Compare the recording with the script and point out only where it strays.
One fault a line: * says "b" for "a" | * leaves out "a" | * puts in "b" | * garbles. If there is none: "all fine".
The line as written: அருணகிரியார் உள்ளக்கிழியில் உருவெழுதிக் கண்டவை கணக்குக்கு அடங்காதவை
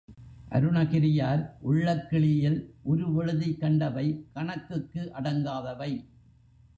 all fine